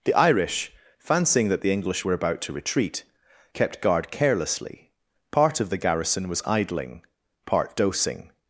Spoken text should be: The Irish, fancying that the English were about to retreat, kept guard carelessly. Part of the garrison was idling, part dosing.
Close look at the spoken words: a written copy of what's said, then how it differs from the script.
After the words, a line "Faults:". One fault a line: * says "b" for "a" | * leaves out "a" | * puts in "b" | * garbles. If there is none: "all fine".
The Irish, fancying that the English were about to retreat, kept guard carelessly. Part of the garrison was idling, part dosing.
Faults:
all fine